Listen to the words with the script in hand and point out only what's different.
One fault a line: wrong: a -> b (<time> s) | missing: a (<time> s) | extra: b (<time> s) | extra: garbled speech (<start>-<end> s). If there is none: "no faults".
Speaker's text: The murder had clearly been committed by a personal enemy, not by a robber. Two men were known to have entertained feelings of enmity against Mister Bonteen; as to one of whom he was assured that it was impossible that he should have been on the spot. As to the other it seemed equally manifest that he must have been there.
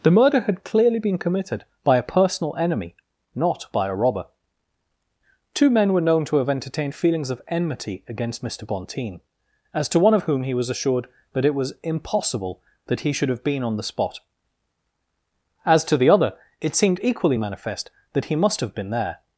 no faults